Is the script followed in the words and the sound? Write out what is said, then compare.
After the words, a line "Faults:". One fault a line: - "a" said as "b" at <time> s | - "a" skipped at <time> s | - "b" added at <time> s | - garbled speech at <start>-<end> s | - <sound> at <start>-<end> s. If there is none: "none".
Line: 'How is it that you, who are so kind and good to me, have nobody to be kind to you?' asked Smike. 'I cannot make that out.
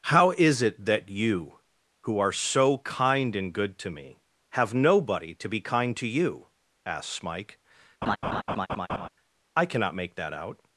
'How is it that you, who are so kind and good to me, have nobody to be kind to you?' asked Smike. 'I cannot make that out.
Faults:
- laugh at 8.0-9.1 s